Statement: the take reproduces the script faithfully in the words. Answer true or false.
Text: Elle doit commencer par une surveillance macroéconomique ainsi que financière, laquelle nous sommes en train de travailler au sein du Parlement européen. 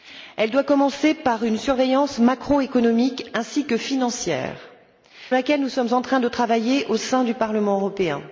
true